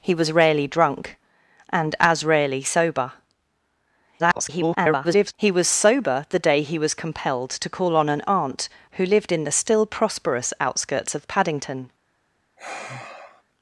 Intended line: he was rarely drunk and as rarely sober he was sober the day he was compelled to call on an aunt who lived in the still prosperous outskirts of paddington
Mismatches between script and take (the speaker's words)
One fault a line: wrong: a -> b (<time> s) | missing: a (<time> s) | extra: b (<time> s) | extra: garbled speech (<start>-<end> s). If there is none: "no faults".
extra: garbled speech (4.2-5.3 s)